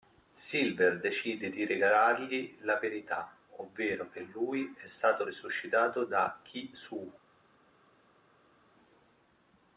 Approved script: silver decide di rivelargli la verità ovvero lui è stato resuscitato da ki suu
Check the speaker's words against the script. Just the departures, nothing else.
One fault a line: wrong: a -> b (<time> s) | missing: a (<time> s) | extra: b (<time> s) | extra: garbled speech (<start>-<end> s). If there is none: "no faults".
extra: che (4.1 s)